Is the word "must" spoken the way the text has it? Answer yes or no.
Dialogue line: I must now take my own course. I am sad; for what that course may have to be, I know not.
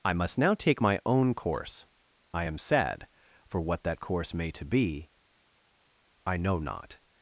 yes